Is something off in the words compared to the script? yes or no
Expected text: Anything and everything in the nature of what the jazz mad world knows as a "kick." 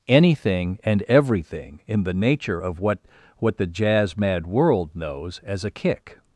yes